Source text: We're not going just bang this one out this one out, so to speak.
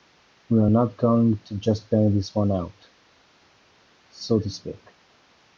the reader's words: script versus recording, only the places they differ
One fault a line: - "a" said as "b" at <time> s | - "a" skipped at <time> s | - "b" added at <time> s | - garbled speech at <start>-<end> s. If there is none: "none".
- "to" added at 1.4 s
- "this one out" skipped at 2.9 s